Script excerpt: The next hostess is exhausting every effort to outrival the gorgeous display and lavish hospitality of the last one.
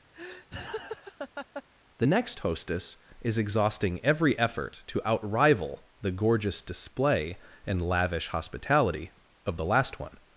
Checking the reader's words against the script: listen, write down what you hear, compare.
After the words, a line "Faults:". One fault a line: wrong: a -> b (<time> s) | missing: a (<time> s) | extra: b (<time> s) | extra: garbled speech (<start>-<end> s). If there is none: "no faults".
The next hostess is exhausting every effort to outrival the gorgeous display and lavish hospitality of the last one.
Faults:
no faults